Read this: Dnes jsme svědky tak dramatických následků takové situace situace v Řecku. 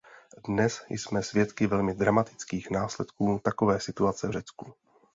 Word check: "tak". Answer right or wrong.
wrong